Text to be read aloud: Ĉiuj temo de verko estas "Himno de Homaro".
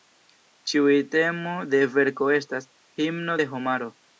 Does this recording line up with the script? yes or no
yes